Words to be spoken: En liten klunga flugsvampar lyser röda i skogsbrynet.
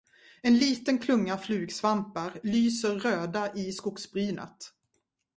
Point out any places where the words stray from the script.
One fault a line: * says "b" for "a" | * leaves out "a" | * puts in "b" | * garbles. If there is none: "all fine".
all fine